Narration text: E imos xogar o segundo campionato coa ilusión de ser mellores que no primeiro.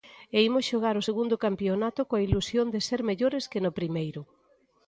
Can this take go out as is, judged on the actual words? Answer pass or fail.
pass